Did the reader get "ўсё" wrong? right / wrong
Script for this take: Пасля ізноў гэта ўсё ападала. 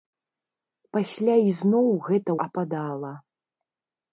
wrong